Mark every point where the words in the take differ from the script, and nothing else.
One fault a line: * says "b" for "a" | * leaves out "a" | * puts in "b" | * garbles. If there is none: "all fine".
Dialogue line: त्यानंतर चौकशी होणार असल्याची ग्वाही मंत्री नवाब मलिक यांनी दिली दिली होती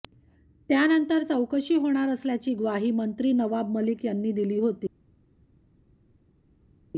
* leaves out "दिली"